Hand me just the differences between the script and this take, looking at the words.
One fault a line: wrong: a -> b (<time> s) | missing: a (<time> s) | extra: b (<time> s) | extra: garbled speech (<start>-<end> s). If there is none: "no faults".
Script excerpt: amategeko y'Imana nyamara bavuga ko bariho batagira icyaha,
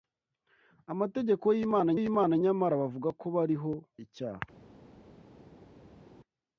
extra: y'Imana (2.0 s)
missing: batagira (3.7 s)